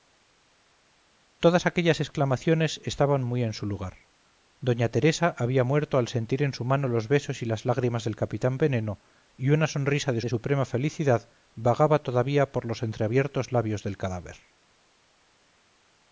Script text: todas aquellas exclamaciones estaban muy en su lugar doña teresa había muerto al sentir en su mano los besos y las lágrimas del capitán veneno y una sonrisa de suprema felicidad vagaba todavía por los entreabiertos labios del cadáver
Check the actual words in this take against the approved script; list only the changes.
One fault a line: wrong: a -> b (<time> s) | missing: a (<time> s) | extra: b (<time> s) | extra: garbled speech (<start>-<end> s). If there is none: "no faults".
extra: de (10.2 s)